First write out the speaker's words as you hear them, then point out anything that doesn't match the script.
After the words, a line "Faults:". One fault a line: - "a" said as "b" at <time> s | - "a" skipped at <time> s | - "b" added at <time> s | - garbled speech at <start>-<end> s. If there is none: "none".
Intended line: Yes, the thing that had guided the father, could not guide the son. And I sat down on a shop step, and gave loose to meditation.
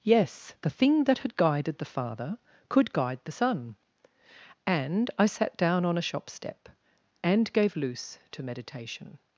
Yes, the thing that had guided the father, could guide the son. And I sat down on a shop step, and gave loose to meditation.
Faults:
- "not" skipped at 2.9 s